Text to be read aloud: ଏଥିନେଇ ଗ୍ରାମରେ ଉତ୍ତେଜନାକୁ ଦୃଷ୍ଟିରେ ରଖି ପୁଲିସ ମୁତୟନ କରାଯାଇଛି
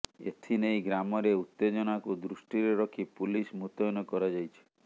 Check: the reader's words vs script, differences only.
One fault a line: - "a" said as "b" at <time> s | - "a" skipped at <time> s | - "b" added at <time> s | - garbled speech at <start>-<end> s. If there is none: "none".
none